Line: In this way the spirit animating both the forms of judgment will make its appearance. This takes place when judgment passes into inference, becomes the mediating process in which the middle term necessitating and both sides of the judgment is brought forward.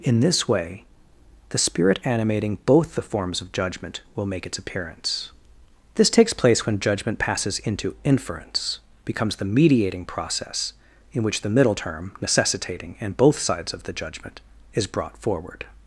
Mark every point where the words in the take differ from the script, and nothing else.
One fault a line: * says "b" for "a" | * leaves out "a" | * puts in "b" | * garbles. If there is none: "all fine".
all fine